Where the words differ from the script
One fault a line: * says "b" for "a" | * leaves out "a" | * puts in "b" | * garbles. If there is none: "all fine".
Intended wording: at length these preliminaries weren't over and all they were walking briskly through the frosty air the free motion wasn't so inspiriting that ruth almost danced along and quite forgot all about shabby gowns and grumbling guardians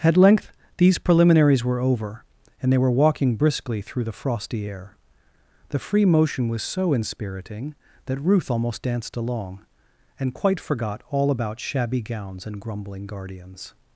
* says "were" for "weren't"
* leaves out "all"
* says "was" for "wasn't"